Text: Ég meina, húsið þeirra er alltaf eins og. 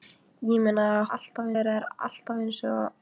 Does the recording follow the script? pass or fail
fail